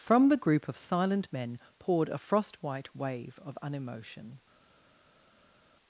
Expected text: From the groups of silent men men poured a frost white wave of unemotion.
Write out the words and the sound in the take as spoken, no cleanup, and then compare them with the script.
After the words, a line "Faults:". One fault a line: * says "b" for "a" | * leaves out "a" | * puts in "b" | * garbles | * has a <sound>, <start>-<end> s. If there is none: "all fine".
From the group of silent men poured a frost white wave of unemotion.
Faults:
* says "group" for "groups"
* leaves out "men"